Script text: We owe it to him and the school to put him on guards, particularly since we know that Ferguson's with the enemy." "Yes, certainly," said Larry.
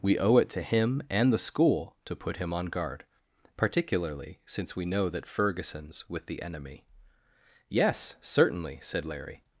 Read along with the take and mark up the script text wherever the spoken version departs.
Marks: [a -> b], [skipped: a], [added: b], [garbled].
We owe it to him and the school to put him on [guards, -> guard] particularly since we know that Ferguson's with the enemy." "Yes, certainly," said Larry.